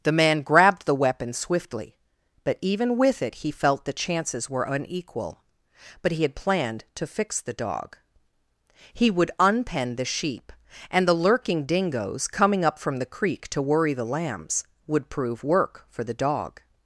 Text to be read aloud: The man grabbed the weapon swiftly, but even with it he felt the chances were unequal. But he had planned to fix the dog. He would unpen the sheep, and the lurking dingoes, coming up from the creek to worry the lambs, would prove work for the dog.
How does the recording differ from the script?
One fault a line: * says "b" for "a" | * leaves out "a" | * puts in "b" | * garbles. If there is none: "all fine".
all fine